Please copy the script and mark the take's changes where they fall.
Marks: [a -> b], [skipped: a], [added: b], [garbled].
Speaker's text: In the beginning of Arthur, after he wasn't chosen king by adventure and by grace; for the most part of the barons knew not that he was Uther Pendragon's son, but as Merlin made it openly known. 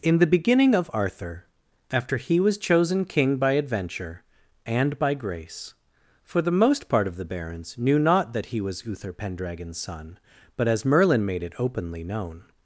In the beginning of Arthur, after he [wasn't -> was] chosen king by adventure and by grace; for the most part of the barons knew not that he was Uther Pendragon's son, but as Merlin made it openly known.